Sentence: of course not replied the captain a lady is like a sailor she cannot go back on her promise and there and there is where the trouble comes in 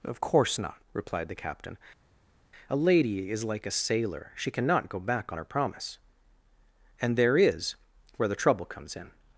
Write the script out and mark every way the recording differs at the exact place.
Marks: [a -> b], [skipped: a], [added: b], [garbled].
of course not replied the captain a lady is like a sailor she cannot go back on her promise and there [skipped: and there] is where the trouble comes in